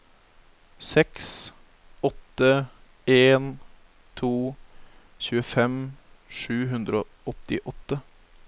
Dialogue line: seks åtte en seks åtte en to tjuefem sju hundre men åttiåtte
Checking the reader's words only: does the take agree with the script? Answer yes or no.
no